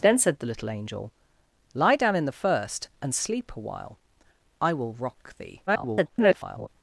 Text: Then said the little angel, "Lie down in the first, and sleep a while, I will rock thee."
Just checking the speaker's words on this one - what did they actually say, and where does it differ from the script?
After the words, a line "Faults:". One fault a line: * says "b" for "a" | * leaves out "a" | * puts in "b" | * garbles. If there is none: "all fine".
Then said the little angel, "Lie down in the first, and sleep a while, I will rock thee." [garbled]
Faults:
* garbles